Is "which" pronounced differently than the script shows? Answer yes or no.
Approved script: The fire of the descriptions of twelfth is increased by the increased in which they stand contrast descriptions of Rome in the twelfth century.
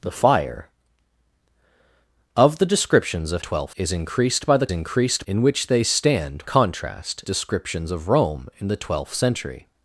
no